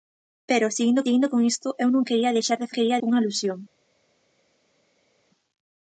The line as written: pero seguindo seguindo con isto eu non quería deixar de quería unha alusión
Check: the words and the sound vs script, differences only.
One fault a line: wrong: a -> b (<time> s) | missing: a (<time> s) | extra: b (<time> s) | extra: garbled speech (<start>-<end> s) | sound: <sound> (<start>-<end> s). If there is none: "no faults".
no faults